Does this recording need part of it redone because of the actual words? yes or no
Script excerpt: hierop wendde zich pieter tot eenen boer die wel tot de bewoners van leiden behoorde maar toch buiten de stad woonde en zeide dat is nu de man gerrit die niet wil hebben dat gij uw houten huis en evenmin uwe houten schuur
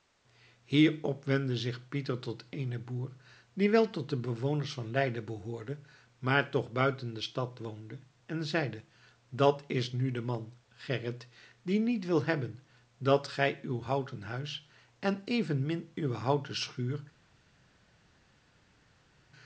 no